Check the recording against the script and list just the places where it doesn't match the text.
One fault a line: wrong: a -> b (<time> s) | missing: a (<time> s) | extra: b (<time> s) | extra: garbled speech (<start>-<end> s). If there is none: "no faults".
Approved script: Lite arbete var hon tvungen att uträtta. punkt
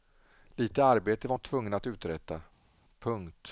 no faults